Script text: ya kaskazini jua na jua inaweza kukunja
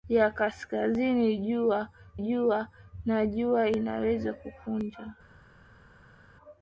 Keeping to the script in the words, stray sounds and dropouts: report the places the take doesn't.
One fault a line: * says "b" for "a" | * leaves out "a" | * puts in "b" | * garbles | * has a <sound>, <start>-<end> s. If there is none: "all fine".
* puts in "jua"